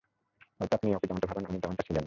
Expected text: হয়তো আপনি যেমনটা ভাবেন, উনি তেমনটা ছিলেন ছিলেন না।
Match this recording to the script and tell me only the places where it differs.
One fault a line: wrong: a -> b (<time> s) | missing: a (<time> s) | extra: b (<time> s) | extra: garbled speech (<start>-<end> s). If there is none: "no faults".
extra: ওকে (0.9 s)
missing: ছিলেন (2.0 s)